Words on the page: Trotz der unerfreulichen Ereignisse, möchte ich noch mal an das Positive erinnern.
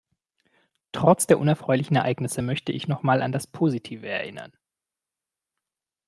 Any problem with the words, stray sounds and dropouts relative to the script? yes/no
no